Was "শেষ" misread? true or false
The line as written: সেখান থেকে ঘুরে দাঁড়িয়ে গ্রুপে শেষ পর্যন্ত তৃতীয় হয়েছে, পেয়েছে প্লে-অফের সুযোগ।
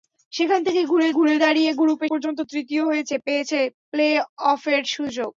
true